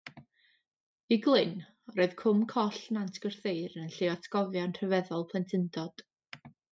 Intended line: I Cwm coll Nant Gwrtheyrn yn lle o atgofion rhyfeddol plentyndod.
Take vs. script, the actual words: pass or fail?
fail